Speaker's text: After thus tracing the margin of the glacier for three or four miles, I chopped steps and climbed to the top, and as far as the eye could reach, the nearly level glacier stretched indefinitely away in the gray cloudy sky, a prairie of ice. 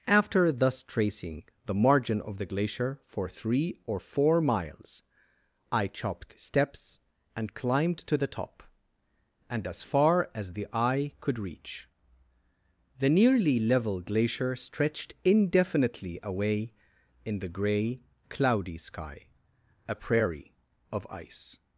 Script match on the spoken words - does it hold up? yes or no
yes